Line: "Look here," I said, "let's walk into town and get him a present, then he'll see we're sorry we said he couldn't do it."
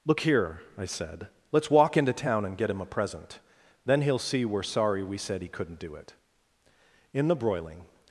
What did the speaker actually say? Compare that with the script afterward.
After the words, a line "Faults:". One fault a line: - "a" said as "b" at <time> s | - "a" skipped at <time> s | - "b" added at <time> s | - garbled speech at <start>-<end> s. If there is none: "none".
"Look here," I said, "let's walk into town and get him a present, then he'll see we're sorry we said he couldn't do it." In the broiling
Faults:
- "In the broiling" added at 7.1 s